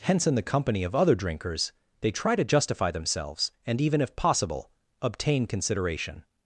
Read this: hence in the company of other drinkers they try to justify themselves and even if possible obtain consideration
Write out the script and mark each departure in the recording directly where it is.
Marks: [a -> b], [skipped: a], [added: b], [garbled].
hence in the company of other drinkers they try to justify themselves and even if possible obtain consideration